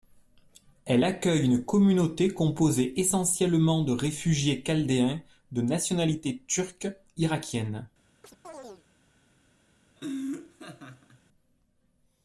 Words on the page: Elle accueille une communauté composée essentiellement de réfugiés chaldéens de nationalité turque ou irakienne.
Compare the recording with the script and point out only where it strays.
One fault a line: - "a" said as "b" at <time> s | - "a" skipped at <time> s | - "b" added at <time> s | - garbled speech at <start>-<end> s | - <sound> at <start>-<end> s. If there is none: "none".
- "ou" skipped at 6.9 s
- chirp at 8.2-8.8 s
- laugh at 10.0-11.2 s